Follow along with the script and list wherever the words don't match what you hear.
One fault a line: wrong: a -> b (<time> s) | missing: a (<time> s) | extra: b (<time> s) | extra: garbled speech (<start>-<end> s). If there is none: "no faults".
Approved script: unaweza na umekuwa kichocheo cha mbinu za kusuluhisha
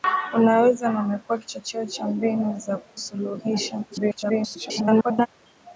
extra: garbled speech (3.9-5.3 s)